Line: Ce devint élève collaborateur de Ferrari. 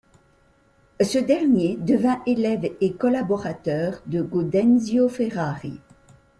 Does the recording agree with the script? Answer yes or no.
no